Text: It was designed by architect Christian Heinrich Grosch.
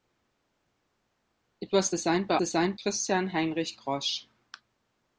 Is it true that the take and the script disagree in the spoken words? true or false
true